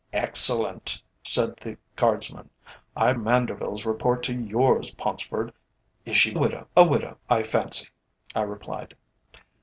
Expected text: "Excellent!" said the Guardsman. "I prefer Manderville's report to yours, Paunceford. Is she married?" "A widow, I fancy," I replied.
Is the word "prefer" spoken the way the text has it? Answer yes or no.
no